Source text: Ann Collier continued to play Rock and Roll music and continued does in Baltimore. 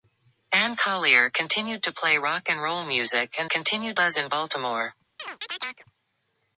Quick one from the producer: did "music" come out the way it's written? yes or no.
yes